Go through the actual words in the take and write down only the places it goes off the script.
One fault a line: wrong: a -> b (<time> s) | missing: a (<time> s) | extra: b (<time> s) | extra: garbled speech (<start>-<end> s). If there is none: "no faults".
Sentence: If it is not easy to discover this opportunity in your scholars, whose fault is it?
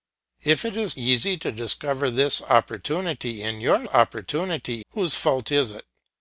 missing: not (1.0 s)
wrong: scholars -> opportunity (3.9 s)